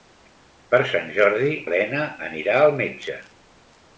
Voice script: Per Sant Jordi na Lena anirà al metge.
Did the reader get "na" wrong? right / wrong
wrong